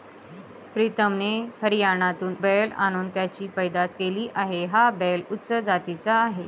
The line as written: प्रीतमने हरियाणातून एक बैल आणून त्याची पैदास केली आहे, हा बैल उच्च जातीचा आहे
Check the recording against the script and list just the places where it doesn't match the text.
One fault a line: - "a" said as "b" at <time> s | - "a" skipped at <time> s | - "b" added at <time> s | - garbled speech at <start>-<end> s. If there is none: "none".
- "एक" skipped at 2.3 s